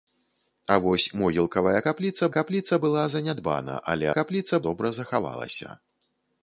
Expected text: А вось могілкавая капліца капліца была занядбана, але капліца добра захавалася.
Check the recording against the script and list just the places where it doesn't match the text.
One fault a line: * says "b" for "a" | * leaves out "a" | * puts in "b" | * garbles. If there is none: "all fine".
all fine